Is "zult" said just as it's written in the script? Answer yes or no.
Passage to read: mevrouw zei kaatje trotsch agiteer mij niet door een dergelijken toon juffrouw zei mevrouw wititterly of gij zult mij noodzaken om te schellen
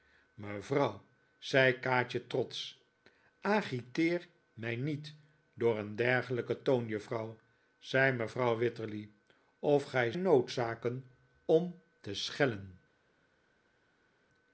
no